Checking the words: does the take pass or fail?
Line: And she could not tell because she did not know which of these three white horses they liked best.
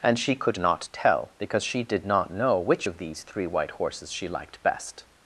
fail